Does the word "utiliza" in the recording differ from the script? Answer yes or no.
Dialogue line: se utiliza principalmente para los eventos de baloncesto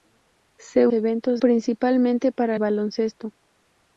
yes